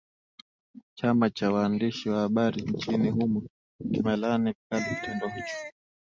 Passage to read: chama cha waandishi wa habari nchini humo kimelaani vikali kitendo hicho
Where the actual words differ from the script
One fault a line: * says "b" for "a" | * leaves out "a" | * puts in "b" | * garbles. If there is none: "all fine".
all fine